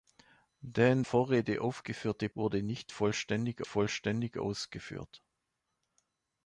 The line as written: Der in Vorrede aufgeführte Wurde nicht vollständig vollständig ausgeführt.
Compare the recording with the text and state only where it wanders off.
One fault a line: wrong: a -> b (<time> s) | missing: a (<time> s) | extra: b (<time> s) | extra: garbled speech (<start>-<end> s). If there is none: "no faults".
no faults